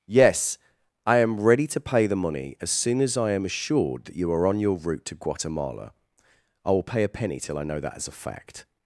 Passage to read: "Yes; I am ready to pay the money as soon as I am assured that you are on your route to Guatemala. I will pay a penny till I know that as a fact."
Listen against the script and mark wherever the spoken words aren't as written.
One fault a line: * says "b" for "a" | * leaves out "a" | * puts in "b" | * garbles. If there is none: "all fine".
all fine